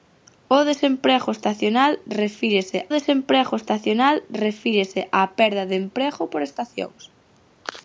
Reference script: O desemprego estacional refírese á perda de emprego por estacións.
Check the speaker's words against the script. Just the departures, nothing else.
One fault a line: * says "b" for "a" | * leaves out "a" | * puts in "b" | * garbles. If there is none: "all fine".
* puts in "desemprego estacional refírese"